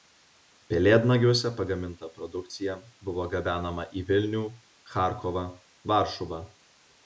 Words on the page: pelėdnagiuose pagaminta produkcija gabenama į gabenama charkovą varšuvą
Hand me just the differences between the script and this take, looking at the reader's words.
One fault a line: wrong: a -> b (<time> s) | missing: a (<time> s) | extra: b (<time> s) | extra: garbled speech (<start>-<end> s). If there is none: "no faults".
extra: buvo (3.1 s)
wrong: gabenama -> vilnių (4.1 s)